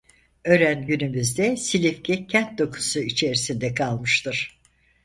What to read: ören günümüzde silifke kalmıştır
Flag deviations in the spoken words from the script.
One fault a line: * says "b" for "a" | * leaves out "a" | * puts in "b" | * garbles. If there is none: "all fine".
* puts in "kent dokusu içerisinde"